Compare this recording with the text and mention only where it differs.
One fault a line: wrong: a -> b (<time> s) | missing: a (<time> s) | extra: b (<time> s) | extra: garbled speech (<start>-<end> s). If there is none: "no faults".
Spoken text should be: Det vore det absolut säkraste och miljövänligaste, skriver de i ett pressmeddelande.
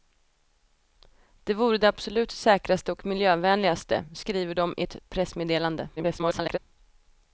extra: garbled speech (6.0-6.6 s)